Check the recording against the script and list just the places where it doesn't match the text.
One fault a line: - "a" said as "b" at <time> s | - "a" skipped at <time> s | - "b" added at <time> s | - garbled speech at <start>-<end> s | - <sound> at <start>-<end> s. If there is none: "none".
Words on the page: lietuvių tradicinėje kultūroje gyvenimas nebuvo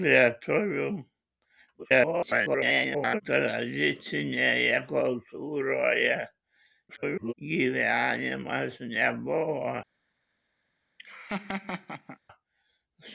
- garbled speech at 1.8-3.2 s
- garbled speech at 6.9-7.3 s
- laugh at 11.0-12.2 s